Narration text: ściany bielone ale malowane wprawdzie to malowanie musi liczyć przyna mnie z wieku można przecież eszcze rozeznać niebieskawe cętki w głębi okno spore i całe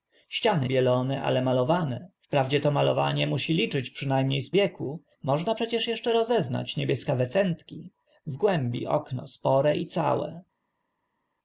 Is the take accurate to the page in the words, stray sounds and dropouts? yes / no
yes